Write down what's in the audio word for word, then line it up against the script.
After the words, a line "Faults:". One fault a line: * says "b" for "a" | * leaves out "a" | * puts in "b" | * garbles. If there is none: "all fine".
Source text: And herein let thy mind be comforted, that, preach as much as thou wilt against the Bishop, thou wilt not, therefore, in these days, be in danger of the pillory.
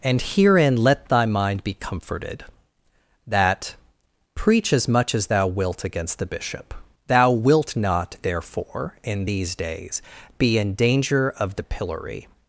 And herein let thy mind be comforted, that, preach as much as thou wilt against the Bishop, thou wilt not, therefore, in these days, be in danger of the pillory.
Faults:
all fine